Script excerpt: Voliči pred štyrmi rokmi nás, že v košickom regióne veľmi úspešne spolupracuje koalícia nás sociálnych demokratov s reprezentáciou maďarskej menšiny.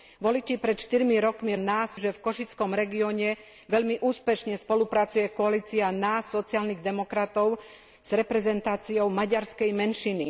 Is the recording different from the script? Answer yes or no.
no